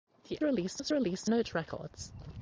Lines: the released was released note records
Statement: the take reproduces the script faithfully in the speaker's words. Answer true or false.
true